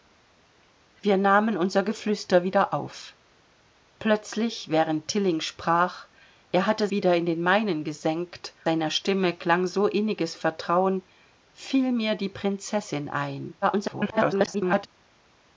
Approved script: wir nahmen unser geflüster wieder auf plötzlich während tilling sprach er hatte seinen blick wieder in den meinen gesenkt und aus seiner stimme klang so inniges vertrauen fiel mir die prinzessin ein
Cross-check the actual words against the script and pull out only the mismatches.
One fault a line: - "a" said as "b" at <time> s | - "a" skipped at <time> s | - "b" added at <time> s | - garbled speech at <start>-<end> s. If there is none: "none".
- "seinen blick" skipped at 6.9 s
- "und aus" skipped at 8.5 s
- garbled speech at 13.6-14.9 s